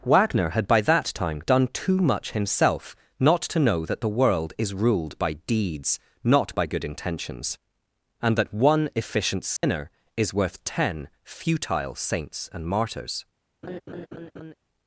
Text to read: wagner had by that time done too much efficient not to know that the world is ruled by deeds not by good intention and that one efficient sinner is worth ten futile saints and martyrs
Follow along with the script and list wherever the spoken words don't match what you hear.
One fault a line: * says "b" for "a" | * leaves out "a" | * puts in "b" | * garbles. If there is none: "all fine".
* says "himself" for "efficient"
* says "intentions" for "intention"